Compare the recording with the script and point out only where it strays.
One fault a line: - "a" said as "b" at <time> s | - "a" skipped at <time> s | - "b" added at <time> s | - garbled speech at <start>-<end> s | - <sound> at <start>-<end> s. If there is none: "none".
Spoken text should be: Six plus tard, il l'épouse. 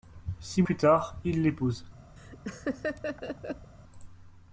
- laugh at 2.2-3.7 s